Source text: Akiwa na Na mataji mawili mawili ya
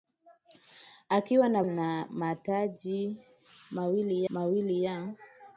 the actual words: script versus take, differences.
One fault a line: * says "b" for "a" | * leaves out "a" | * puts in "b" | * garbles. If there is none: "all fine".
all fine